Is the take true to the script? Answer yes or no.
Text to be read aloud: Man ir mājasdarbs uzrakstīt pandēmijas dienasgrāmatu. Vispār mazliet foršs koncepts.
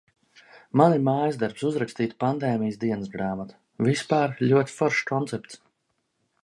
no